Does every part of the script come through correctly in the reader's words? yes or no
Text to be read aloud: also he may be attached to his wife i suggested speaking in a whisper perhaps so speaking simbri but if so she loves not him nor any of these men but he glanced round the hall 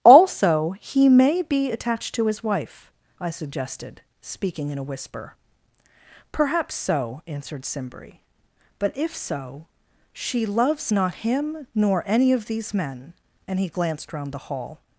no